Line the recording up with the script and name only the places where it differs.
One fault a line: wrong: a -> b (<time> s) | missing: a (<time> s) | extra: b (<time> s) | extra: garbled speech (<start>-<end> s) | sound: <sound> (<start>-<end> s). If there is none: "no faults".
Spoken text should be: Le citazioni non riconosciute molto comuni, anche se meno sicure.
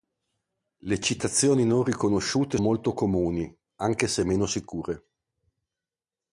no faults